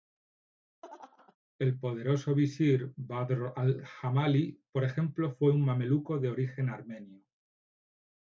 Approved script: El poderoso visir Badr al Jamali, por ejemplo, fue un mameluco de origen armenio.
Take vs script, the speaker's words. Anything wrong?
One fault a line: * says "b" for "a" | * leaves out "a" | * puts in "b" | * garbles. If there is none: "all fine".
all fine